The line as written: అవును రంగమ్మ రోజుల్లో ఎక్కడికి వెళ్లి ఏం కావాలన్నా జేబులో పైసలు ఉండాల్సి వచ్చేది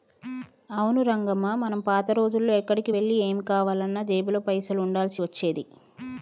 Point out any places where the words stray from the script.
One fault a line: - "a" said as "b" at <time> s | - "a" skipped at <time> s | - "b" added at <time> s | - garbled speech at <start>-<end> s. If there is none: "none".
- "మనం పాత" added at 1.6 s